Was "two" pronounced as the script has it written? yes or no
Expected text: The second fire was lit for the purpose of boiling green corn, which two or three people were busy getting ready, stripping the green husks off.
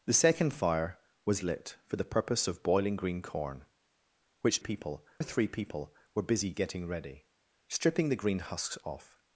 no